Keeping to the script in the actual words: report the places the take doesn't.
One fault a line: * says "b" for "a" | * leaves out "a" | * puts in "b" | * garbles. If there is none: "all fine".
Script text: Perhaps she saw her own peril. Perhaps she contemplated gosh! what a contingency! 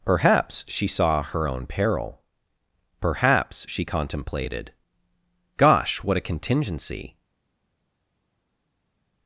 all fine